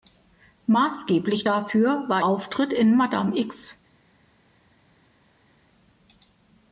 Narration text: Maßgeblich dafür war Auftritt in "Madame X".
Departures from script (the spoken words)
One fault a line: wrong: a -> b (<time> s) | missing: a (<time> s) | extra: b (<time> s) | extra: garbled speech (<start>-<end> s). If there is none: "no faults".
no faults